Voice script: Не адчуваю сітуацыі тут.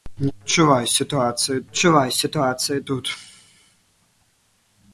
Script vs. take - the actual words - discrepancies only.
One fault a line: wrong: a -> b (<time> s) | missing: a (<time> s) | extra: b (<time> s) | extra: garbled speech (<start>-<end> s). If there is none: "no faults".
extra: адчуваю сітуацыі (1.7 s)